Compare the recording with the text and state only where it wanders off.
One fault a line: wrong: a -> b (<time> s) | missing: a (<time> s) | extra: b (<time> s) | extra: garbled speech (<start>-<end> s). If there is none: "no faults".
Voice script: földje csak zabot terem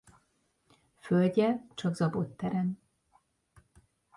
no faults